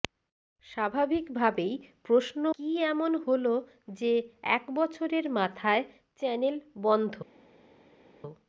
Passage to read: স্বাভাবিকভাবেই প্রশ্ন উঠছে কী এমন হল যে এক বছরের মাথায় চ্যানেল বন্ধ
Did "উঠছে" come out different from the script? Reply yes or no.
yes